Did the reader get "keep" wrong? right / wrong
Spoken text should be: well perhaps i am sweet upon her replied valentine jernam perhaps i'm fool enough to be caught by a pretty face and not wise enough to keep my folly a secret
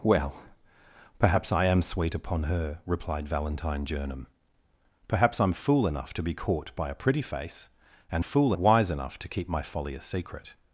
right